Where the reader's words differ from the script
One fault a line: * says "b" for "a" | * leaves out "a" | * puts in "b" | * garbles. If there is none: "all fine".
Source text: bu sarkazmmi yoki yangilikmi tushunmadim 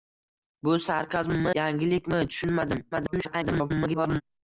* leaves out "yoki"
* garbles